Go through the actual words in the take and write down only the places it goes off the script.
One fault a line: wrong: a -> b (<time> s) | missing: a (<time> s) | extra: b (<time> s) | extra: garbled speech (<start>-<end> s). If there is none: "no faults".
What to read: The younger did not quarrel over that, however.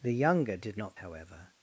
missing: quarrel over that (1.0 s)